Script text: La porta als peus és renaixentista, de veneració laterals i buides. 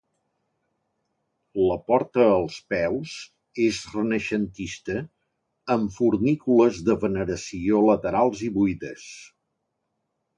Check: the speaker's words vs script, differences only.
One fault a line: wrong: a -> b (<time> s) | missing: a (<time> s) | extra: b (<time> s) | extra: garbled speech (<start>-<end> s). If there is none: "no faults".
extra: amb fornícules (5.8 s)